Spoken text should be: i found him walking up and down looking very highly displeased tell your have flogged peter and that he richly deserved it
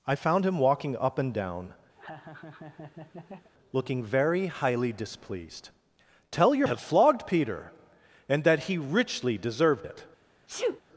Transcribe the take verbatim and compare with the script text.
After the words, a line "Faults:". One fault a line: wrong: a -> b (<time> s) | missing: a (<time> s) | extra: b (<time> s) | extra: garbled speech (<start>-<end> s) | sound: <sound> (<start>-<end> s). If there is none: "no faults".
i found him walking up and down looking very highly displeased tell your have flogged peter and that he richly deserved it
Faults:
sound: laugh (2.0-3.5 s)
sound: sneeze (10.5-10.8 s)